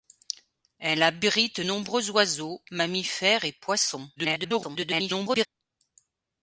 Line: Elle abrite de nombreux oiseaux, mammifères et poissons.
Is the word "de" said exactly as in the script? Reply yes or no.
no